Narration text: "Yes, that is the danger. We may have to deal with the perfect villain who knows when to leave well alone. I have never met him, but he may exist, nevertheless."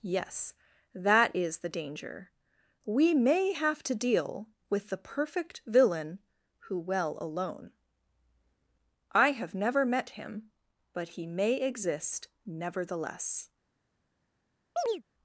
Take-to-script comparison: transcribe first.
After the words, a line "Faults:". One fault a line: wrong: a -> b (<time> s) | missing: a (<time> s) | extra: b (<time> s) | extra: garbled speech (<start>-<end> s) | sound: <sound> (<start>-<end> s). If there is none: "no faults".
"Yes, that is the danger. We may have to deal with the perfect villain who well alone. I have never met him, but he may exist, nevertheless."
Faults:
missing: knows when to leave (6.8 s)
sound: chirp (14.8-15.0 s)